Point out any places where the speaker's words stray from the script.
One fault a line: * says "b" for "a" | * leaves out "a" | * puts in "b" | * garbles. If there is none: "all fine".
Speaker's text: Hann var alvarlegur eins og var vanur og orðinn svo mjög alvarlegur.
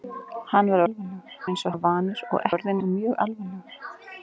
all fine